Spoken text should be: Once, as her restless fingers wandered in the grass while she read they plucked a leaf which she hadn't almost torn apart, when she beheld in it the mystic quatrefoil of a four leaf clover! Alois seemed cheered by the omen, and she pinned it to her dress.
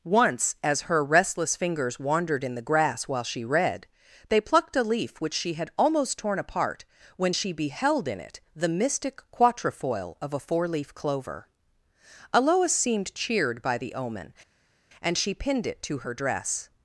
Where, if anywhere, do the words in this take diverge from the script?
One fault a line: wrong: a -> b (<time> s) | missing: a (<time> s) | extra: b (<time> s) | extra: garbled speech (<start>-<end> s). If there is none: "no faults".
wrong: hadn't -> had (5.5 s)